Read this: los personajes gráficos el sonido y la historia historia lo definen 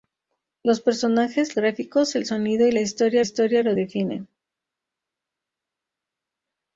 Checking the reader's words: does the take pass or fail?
pass